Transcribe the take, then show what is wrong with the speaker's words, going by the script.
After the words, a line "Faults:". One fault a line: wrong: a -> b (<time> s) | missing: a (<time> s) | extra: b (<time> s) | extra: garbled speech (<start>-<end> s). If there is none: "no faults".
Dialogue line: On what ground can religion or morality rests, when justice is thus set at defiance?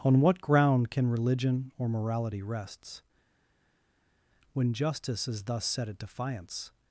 On what ground can religion or morality rests, when justice is thus set at defiance?
Faults:
no faults